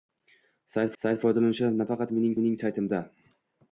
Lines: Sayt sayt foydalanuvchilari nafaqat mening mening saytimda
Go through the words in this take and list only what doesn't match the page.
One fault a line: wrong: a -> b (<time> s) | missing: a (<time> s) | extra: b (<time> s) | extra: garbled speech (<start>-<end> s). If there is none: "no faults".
no faults